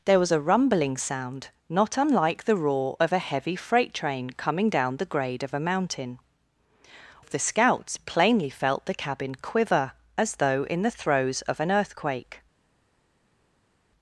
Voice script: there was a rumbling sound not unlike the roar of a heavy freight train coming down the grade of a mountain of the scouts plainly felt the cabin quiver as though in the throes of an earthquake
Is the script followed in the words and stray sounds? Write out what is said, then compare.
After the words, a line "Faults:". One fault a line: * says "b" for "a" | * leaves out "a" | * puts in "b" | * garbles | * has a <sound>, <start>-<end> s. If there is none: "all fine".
there was a rumbling sound not unlike the roar of a heavy freight train coming down the grade of a mountain of the scouts plainly felt the cabin quiver as though in the throes of an earthquake
Faults:
all fine